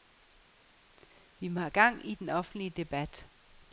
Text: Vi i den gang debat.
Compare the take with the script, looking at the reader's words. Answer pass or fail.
fail